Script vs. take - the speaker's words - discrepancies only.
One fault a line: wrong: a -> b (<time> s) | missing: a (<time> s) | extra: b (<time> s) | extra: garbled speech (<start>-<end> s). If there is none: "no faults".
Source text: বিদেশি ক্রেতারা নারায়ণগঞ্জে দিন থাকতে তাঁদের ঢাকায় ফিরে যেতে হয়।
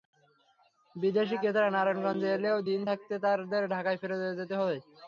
extra: এলেও (2.4 s)